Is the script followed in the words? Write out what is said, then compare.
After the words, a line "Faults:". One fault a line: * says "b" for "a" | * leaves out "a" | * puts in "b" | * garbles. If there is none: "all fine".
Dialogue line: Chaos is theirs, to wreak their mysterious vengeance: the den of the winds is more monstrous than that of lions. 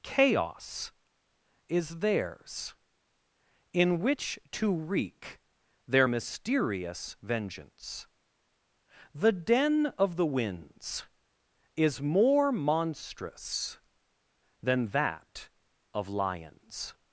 Chaos is theirs, in which to wreak their mysterious vengeance: the den of the winds is more monstrous than that of lions.
Faults:
* puts in "in which"